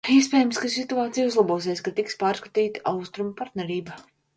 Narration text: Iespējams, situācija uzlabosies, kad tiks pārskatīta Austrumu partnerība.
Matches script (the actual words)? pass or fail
fail